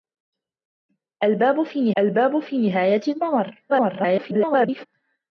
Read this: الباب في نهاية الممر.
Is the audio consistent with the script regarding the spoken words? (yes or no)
no